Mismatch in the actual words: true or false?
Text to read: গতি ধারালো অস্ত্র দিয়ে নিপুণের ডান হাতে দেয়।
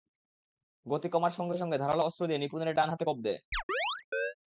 true